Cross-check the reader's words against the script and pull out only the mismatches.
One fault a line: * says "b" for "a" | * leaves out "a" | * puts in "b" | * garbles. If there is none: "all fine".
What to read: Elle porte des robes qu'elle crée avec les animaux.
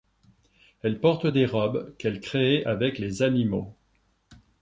all fine